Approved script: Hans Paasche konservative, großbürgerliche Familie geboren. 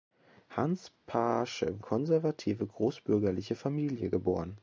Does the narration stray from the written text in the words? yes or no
no